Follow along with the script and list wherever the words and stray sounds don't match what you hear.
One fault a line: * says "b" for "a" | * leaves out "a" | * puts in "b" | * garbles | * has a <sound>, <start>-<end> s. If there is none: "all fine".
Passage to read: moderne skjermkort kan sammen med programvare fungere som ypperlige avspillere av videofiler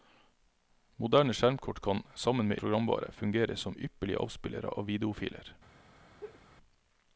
* has a laugh, 6.2-6.4 s